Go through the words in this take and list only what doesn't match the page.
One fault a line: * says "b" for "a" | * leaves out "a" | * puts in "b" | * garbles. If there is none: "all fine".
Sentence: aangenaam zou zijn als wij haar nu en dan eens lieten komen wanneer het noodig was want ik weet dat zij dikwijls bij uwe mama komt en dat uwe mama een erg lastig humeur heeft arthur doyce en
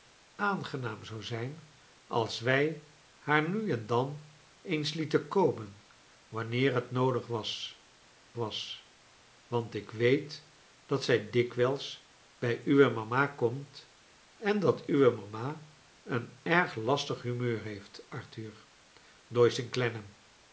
* puts in "was"